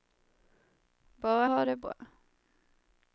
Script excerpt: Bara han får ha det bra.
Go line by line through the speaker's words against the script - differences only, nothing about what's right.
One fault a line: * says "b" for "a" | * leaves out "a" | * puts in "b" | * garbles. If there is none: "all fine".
* leaves out "han får"